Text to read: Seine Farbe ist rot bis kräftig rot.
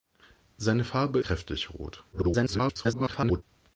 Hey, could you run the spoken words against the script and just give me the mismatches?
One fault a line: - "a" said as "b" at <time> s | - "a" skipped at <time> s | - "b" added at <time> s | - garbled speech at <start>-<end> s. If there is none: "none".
- "ist rot bis" skipped at 1.2 s
- garbled speech at 2.1-3.4 s